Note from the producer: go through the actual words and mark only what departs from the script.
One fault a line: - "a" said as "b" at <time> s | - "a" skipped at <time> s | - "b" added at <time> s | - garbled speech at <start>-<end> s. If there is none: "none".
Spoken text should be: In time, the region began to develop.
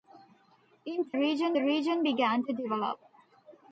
- "time" said as "region" at 1.2 s